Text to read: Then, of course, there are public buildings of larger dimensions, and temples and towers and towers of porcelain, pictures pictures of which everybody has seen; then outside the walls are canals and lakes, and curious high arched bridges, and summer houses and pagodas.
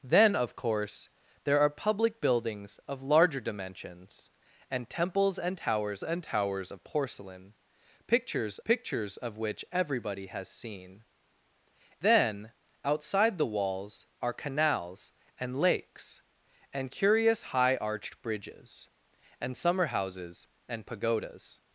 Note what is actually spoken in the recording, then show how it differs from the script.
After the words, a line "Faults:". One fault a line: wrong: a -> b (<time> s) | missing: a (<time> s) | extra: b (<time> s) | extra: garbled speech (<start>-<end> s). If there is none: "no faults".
Then, of course, there are public buildings of larger dimensions, and temples and towers and towers of porcelain, pictures pictures of which everybody has seen; then outside the walls are canals and lakes, and curious high arched bridges, and summer houses and pagodas.
Faults:
no faults